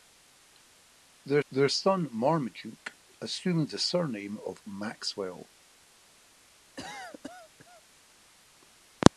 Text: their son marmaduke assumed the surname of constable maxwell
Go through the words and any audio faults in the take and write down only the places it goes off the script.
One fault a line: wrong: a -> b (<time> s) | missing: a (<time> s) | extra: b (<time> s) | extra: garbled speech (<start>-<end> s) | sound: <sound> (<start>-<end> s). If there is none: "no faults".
extra: their (1.5 s)
missing: constable (4.7 s)
sound: cough (6.8-7.8 s)